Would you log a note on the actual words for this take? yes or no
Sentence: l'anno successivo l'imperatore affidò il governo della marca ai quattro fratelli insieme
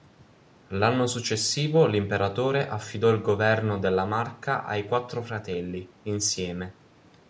no